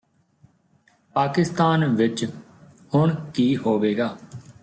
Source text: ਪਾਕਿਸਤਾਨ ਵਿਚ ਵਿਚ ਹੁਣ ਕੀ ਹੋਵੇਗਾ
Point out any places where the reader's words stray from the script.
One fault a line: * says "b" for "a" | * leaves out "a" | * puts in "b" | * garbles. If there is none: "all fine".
* leaves out "ਵਿਚ"